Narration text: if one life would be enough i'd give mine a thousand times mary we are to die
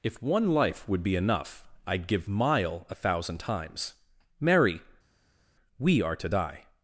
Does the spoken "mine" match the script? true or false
false